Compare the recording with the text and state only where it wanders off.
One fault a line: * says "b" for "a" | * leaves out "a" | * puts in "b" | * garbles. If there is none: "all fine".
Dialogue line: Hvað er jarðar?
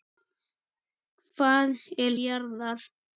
all fine